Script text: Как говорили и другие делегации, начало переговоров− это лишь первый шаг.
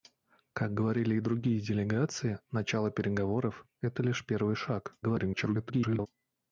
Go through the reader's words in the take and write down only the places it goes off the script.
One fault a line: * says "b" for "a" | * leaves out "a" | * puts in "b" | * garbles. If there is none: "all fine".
* garbles